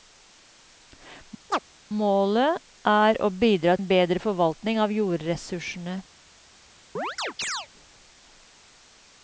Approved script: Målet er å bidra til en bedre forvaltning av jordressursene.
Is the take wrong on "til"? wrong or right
wrong